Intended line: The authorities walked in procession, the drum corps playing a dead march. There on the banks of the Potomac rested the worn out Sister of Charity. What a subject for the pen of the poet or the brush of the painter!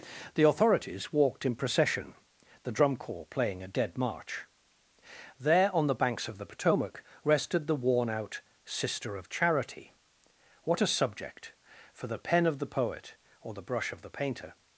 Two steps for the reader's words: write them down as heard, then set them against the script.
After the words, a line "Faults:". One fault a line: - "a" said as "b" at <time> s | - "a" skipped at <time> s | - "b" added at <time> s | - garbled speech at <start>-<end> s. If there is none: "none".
The authorities walked in procession, the drum corps playing a dead march. There on the banks of the Potomac rested the worn out Sister of Charity. What a subject for the pen of the poet or the brush of the painter!
Faults:
none